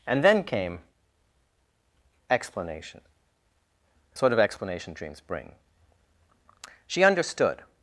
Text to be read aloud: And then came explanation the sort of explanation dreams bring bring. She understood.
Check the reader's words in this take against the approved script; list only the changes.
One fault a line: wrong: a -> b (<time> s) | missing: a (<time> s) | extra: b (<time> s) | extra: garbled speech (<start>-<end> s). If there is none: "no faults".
missing: bring (5.5 s)